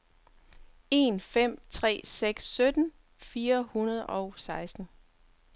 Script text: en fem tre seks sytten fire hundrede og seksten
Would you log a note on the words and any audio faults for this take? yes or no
no